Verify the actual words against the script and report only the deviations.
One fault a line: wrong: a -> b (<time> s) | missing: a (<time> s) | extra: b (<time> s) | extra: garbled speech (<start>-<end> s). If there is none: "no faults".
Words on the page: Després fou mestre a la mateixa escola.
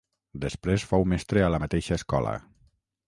no faults